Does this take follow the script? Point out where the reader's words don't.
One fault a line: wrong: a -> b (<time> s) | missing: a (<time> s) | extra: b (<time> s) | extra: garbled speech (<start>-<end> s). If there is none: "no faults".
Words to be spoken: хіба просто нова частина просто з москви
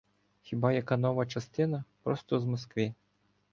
wrong: просто -> яка (0.7 s)